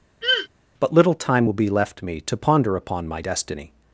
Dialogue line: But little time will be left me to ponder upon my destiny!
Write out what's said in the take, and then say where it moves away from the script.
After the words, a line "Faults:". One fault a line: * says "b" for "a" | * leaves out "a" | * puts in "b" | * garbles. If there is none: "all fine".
But little time will be left me to ponder upon my destiny!
Faults:
all fine